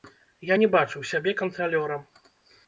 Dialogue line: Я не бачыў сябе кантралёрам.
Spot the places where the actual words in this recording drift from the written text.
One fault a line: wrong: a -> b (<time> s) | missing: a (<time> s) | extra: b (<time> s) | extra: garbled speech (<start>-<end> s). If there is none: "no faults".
no faults